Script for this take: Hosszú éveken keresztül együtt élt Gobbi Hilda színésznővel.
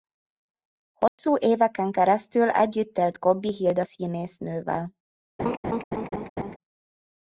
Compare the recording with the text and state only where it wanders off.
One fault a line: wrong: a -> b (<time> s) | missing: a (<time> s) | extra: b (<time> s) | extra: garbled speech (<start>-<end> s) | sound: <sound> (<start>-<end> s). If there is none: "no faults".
sound: dropout (1.1-1.2 s)
sound: laugh (5.4-6.6 s)